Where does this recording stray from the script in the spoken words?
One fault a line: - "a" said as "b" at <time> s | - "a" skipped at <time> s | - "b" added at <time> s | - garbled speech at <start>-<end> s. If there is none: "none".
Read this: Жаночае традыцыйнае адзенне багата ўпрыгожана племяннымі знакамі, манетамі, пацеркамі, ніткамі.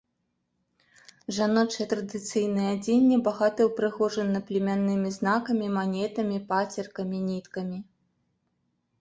none